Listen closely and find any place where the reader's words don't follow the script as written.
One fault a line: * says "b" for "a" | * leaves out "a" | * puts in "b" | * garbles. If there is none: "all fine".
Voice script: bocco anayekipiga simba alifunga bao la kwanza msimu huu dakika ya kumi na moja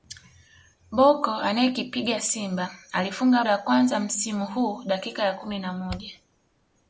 * leaves out "bao"